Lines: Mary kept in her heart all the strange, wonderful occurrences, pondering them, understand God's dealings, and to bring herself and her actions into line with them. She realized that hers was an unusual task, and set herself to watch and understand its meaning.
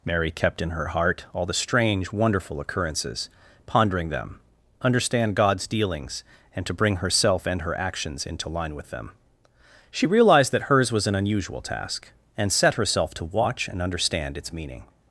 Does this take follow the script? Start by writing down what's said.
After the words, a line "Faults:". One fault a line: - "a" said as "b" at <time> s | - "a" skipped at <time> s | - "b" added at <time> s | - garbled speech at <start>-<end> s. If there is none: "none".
Mary kept in her heart all the strange, wonderful occurrences, pondering them, understand God's dealings, and to bring herself and her actions into line with them. She realized that hers was an unusual task, and set herself to watch and understand its meaning.
Faults:
none